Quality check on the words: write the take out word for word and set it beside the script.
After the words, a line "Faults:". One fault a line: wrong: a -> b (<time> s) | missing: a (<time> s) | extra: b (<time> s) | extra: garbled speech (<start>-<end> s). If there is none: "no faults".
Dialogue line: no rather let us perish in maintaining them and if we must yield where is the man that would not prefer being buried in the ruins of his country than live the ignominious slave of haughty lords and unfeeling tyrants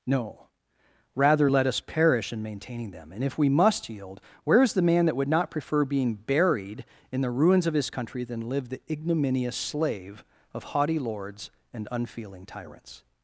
no rather let us perish in maintaining them and if we must yield where is the man that would not prefer being buried in the ruins of his country than live the ignominious slave of haughty lords and unfeeling tyrants
Faults:
no faults